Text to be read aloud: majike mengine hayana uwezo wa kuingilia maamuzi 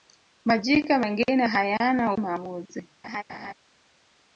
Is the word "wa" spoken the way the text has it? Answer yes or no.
no